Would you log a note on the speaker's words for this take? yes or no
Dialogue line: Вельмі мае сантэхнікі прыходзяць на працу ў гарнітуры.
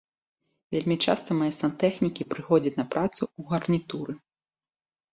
yes